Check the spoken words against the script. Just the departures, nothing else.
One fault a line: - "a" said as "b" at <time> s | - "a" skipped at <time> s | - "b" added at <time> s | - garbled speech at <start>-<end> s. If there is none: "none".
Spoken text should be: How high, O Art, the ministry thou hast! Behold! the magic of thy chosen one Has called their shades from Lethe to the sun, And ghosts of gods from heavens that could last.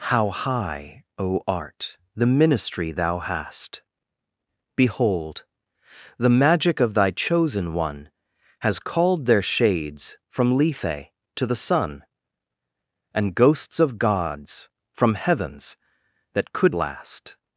none